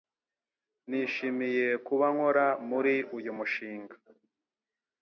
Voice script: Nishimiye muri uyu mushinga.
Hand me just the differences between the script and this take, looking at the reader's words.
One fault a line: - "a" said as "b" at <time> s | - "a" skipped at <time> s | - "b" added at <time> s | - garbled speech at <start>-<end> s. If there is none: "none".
- "kuba nkora" added at 1.9 s